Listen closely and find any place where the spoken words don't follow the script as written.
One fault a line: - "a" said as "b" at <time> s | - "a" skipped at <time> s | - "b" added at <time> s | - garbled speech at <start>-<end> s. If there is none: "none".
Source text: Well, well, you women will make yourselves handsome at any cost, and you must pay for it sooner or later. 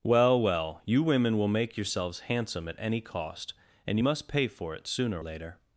- "or" skipped at 5.2 s